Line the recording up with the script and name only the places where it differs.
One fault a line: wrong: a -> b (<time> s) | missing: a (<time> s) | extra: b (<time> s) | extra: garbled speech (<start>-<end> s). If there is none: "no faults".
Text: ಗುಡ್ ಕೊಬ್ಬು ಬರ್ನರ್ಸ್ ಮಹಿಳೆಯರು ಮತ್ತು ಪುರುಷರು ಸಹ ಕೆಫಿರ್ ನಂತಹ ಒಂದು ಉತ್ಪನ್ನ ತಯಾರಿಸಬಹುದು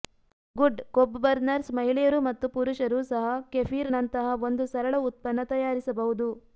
extra: ಸರಳ (4.7 s)